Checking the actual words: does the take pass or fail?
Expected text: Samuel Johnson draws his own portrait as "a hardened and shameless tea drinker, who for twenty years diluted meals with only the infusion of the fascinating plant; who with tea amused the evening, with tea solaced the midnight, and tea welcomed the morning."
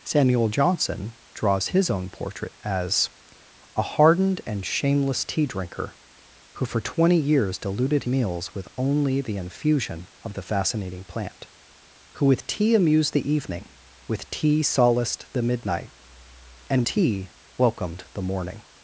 pass